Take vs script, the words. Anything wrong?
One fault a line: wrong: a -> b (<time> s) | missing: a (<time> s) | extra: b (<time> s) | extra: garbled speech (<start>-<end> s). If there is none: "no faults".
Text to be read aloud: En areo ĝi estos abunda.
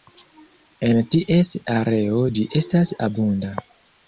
extra: ties (1.1 s)
wrong: estos -> estas (2.6 s)